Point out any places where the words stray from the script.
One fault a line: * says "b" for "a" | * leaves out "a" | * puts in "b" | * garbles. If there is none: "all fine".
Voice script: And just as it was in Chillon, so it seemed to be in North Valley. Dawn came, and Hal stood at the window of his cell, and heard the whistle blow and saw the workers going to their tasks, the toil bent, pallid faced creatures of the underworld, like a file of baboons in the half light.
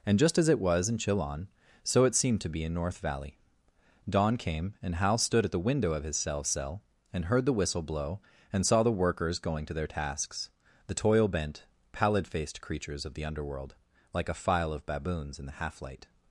* puts in "cell"